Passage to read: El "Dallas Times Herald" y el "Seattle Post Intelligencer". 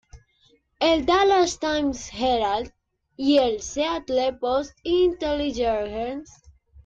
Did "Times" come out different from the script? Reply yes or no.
no